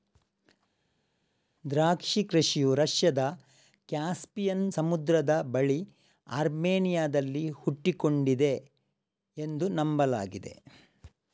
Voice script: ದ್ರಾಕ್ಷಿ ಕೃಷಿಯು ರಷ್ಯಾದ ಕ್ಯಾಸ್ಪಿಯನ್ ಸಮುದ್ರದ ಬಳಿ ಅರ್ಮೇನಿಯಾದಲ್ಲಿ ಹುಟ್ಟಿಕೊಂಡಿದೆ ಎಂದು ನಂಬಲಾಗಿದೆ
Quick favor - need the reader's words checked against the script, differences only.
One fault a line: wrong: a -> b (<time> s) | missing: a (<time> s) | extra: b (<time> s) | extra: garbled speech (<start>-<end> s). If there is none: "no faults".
no faults